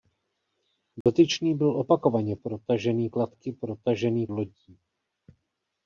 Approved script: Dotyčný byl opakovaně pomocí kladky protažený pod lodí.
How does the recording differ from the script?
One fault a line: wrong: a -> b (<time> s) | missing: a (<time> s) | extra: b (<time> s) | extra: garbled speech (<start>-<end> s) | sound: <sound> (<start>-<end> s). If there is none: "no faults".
sound: dropout (1.0-1.1 s)
wrong: pomocí -> protažený (2.3 s)
missing: pod (4.3 s)